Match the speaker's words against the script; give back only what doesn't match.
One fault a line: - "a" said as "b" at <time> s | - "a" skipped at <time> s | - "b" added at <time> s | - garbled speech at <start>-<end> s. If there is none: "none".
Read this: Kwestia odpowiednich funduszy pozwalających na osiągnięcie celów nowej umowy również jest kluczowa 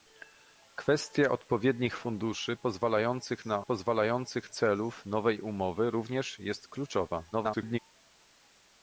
- "osiągnięcie" said as "pozwalających" at 3.6 s
- garbled speech at 7.3-7.8 s